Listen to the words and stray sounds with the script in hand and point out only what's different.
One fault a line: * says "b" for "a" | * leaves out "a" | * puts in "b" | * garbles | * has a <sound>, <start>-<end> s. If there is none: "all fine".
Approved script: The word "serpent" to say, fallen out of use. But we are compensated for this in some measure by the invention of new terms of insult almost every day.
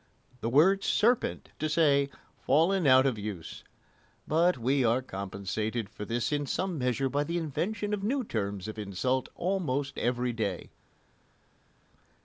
all fine